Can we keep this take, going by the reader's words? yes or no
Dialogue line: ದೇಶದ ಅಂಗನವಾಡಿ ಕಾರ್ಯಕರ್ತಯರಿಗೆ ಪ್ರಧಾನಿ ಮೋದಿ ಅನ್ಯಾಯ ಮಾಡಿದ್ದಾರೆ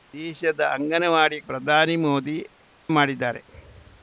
no